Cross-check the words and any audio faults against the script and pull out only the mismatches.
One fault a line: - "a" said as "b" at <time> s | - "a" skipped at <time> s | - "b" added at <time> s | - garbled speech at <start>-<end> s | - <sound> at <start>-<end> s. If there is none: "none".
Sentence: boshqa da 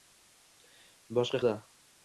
none